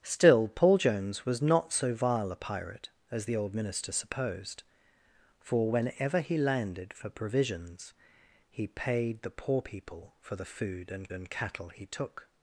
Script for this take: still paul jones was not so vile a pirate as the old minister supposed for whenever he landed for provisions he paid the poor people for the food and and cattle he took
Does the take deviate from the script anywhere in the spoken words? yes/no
no